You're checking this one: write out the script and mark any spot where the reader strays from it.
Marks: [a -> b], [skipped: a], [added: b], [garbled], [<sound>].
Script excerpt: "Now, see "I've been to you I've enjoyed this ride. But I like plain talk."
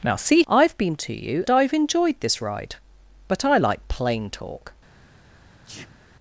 "Now, see "I've been to you I've enjoyed this ride. But I like plain talk." [sneeze]